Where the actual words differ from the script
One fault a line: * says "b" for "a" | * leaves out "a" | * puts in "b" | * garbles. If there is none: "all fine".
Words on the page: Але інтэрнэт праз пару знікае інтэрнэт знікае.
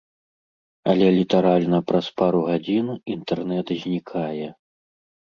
* says "літаральна" for "інтэрнэт"
* says "гадзін" for "знікае"